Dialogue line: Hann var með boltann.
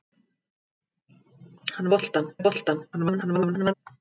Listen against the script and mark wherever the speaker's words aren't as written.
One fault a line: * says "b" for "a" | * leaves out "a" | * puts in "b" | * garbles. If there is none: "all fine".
* says "boltann" for "var"
* garbles